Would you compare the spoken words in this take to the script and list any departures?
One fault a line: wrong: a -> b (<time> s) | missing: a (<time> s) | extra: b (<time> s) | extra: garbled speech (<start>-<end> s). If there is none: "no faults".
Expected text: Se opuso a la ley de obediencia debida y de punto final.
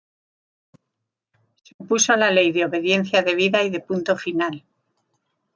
no faults